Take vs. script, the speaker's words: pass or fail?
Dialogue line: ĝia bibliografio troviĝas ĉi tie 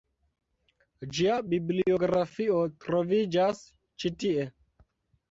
pass